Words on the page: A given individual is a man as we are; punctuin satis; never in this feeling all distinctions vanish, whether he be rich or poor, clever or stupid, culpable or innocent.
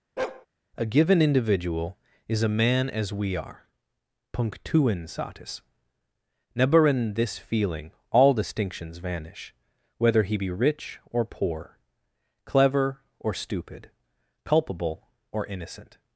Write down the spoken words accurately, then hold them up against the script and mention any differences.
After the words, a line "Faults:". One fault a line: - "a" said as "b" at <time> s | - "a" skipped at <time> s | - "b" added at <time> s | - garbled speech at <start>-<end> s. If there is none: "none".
A given individual is a man as we are; punctuin satis; never in this feeling all distinctions vanish, whether he be rich or poor, clever or stupid, culpable or innocent.
Faults:
none